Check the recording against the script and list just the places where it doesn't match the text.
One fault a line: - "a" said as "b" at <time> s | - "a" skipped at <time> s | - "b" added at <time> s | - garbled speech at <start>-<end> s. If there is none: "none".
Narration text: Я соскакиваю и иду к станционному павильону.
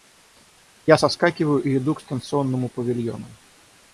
none